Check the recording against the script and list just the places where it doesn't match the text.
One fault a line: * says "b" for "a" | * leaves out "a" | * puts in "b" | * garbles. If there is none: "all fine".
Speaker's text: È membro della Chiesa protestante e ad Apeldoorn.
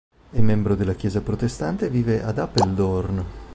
* puts in "vive"